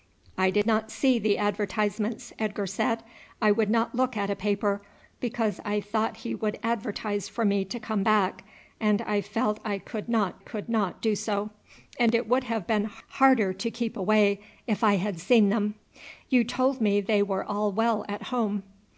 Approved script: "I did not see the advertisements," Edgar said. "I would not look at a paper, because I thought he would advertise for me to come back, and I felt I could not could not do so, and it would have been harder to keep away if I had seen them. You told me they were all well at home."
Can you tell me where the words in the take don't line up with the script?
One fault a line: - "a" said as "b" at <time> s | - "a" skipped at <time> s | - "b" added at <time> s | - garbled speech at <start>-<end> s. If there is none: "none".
none